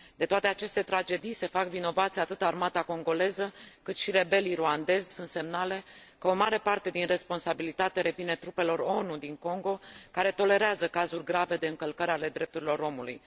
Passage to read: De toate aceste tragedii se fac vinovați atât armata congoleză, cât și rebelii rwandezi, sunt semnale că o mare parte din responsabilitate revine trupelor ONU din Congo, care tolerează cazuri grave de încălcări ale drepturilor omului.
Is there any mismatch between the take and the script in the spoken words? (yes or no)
no